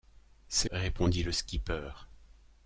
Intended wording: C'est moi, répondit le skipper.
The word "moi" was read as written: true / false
false